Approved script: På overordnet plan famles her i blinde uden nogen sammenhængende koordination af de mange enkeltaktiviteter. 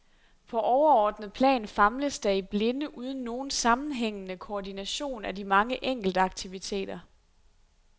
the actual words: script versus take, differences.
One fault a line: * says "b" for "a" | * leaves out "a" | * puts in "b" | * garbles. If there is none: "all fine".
* says "der" for "her"